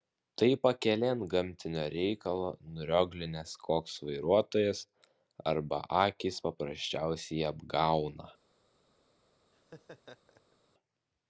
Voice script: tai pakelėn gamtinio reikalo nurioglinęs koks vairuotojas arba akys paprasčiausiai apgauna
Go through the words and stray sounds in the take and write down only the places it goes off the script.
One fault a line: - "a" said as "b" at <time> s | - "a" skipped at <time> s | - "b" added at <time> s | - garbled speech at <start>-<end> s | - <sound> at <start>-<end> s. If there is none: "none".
- laugh at 9.5-10.6 s